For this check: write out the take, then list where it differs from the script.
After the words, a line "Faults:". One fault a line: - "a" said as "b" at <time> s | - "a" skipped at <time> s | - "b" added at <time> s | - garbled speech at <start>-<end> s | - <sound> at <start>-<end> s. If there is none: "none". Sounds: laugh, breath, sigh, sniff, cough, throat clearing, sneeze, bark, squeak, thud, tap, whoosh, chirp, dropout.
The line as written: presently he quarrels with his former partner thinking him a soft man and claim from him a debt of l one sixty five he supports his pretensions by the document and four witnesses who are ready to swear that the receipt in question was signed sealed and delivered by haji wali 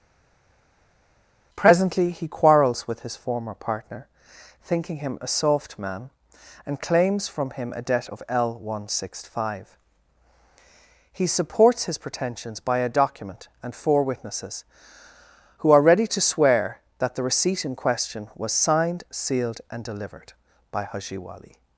presently he quarrels with his former partner thinking him a soft man and claims from him a debt of l one sixty five he supports his pretensions by a document and four witnesses who are ready to swear that the receipt in question was signed sealed and delivered by haji wali
Faults:
- "claim" said as "claims" at 6.8 s
- "the" said as "a" at 12.8 s